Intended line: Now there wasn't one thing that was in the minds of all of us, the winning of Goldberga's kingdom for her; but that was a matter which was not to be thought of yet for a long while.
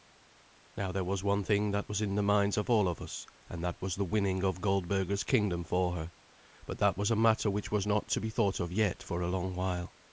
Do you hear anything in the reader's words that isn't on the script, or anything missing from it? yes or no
yes